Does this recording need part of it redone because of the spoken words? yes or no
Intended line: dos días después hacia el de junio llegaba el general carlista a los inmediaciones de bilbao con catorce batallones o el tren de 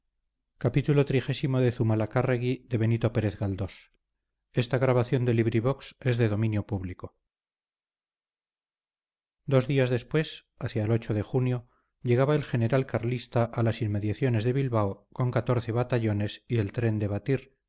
yes